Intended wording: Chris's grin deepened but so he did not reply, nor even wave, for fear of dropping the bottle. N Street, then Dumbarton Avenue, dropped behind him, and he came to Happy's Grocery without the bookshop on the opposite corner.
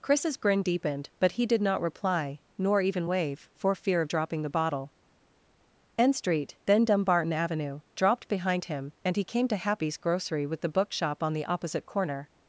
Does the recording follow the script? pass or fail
fail